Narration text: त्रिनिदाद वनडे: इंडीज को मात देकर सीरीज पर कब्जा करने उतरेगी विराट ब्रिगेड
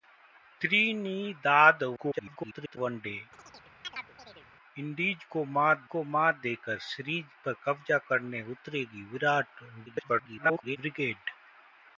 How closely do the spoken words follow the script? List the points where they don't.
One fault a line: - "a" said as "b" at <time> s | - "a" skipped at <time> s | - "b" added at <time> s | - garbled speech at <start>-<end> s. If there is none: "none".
- garbled speech at 2.0-2.8 s
- "को मात" added at 5.8 s
- garbled speech at 9.9-10.8 s